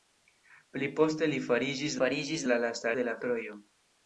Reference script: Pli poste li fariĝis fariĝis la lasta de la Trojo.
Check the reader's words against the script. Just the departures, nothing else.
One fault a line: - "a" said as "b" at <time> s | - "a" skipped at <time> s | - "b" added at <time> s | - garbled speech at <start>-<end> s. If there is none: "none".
none